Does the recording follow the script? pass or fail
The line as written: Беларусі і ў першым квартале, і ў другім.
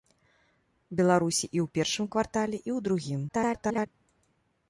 fail